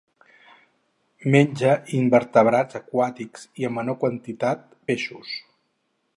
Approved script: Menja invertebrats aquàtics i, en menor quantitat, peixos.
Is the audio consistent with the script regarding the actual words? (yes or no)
yes